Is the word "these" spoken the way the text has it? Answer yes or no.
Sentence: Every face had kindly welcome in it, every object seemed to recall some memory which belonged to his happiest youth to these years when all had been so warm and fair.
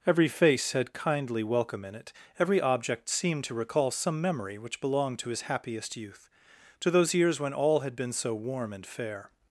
no